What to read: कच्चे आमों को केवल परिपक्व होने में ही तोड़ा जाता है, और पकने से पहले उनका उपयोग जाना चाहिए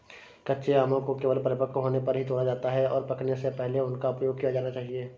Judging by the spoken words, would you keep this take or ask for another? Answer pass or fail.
fail